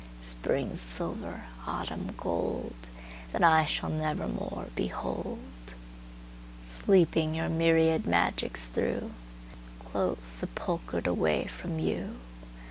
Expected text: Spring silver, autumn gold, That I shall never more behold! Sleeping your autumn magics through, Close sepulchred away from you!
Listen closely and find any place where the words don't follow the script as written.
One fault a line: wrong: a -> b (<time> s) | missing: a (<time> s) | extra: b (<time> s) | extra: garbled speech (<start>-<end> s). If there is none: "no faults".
wrong: autumn -> myriad (7.5 s)